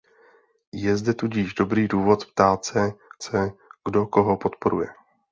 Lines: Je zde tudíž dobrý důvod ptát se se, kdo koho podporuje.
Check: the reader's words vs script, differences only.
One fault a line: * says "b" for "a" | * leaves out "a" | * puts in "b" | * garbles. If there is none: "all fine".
all fine